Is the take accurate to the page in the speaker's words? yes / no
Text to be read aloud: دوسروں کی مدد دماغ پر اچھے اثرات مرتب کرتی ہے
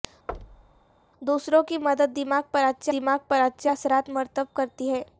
no